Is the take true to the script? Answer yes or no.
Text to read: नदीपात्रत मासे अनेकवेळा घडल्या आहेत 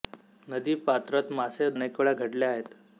yes